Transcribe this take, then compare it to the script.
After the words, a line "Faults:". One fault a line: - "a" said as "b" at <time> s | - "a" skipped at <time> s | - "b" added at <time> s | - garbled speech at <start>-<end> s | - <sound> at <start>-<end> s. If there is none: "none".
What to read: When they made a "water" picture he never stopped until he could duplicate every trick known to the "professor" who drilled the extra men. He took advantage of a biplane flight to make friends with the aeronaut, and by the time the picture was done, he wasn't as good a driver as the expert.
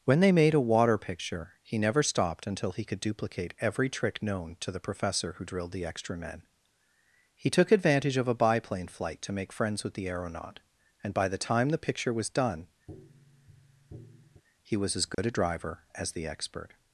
When they made a "water" picture he never stopped until he could duplicate every trick known to the "professor" who drilled the extra men. He took advantage of a biplane flight to make friends with the aeronaut, and by the time the picture was done, he was as good a driver as the expert.
Faults:
- tap at 12.9-14.4 s
- "wasn't" said as "was" at 14.8 s
- dropout at 15.1-15.2 s